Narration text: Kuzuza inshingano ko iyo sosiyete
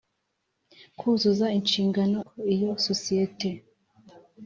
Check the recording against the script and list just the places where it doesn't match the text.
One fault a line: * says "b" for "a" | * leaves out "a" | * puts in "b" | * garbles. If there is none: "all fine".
all fine